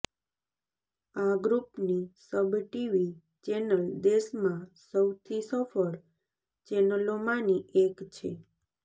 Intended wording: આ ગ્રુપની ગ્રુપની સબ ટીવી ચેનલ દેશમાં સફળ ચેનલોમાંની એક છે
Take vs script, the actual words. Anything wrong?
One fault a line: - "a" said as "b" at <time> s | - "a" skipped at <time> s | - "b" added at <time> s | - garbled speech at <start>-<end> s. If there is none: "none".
- "ગ્રુપની" skipped at 2.0 s
- "સૌથી" added at 4.8 s